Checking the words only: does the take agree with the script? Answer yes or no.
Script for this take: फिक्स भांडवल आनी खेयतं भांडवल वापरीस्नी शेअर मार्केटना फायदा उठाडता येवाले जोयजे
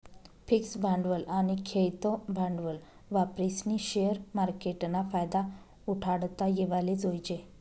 yes